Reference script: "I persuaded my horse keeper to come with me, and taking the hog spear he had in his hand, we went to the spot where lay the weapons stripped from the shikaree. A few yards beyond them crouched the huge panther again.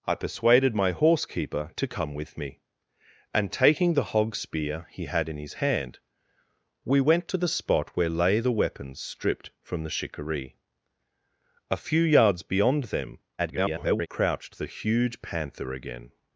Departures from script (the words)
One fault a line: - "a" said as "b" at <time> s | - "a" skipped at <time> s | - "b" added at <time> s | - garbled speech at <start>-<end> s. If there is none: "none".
- garbled speech at 13.4-14.1 s